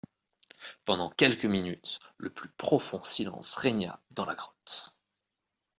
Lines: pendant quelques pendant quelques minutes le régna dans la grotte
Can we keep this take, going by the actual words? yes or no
no